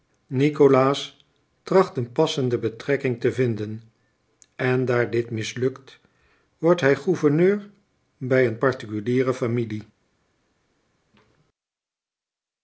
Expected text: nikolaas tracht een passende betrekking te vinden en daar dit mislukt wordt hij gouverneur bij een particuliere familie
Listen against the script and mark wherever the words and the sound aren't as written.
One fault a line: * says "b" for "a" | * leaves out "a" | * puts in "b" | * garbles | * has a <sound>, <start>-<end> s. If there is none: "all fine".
all fine